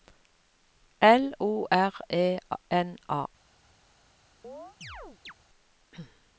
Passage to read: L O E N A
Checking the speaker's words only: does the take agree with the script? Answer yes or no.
no